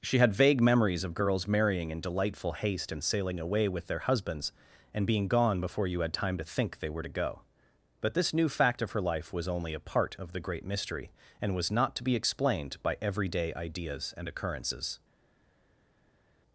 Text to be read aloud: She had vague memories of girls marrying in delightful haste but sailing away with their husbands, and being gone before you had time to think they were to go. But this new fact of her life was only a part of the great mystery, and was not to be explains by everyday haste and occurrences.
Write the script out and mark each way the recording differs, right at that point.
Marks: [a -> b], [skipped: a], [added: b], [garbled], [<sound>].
She had vague memories of girls marrying in delightful haste [but -> and] sailing away with their husbands, and being gone before you had time to think they were to go. But this new fact of her life was only a part of the great mystery, and was not to be [explains -> explained] by everyday [haste -> ideas] and occurrences.